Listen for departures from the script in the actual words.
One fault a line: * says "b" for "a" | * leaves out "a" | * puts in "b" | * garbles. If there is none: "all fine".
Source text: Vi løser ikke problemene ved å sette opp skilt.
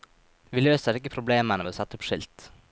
all fine